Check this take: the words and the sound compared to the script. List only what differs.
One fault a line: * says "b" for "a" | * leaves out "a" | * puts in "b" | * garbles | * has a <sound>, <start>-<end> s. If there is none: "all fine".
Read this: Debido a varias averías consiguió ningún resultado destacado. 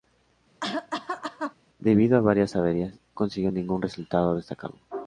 * has a cough, 0.6-1.5 s